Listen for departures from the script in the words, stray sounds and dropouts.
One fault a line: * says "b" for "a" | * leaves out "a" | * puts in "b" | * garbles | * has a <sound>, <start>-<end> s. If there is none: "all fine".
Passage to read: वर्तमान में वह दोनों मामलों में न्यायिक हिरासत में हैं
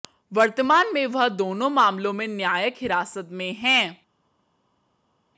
all fine